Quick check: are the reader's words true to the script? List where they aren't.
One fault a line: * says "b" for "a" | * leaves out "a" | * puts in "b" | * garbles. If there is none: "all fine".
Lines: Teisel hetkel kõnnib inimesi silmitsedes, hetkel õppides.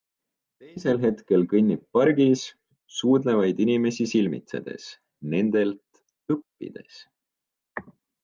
* puts in "pargis suudlevaid"
* says "nendelt" for "hetkel"